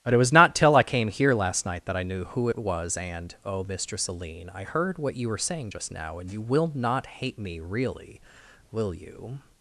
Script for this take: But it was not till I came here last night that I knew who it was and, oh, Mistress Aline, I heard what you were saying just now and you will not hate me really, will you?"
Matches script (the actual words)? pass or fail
pass